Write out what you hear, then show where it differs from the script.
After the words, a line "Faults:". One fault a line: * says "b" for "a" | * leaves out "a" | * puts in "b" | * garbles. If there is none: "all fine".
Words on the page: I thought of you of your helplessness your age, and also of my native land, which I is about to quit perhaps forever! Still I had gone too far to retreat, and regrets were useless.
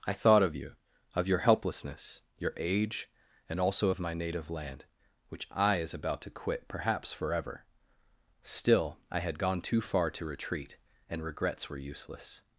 I thought of you of your helplessness your age, and also of my native land, which I is about to quit perhaps forever! Still I had gone too far to retreat, and regrets were useless.
Faults:
all fine